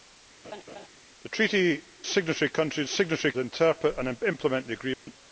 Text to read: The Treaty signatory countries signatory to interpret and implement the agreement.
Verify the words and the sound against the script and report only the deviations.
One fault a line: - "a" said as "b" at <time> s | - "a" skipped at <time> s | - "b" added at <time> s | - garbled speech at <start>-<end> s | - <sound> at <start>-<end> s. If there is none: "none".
- laugh at 0.4-0.9 s
- dropout at 4.9-5.1 s